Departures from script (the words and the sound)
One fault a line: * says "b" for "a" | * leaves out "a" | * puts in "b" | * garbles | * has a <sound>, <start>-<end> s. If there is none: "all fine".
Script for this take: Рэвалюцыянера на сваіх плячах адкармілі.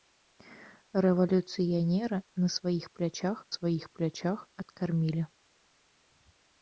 * puts in "сваіх плячах"